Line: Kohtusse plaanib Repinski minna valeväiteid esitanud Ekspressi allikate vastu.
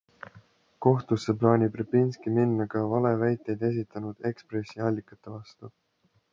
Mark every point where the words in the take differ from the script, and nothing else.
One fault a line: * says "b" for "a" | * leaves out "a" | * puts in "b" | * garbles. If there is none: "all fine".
* puts in "ka"